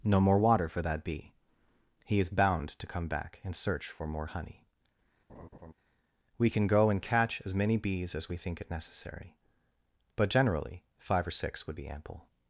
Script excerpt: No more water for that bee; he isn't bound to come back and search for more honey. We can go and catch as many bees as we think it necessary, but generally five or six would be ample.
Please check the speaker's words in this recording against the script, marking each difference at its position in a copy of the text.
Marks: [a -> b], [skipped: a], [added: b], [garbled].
No more water for that bee; he [isn't -> is] bound to come back and search for more honey. We can go and catch as many bees as we think it necessary, but generally five or six would be ample.